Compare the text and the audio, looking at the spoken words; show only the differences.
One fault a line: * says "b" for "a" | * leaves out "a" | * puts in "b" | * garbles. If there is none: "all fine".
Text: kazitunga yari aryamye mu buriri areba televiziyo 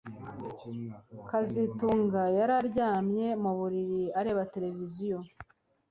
all fine